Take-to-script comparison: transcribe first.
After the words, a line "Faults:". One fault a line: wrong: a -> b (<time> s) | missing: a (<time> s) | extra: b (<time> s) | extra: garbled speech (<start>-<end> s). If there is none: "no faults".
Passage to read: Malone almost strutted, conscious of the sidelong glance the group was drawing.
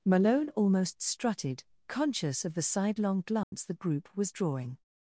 Malone almost strutted, conscious of the sidelong glance the group was drawing.
Faults:
no faults